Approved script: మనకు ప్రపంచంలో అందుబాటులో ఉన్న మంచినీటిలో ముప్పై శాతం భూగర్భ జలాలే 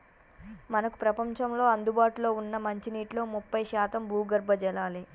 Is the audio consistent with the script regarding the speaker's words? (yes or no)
yes